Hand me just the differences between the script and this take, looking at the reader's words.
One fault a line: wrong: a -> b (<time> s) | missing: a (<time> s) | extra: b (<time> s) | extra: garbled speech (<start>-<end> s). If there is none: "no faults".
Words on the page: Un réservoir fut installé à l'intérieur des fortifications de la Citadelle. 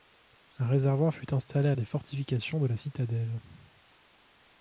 missing: l'intérieur (1.8 s)